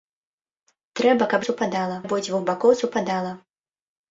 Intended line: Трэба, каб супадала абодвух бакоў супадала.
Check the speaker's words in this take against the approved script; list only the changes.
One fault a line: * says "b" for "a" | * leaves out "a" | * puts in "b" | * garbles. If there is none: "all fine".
all fine